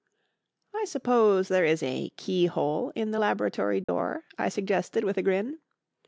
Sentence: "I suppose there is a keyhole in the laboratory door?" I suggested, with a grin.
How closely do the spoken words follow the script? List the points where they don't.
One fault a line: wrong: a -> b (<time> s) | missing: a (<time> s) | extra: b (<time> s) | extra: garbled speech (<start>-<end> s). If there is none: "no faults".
no faults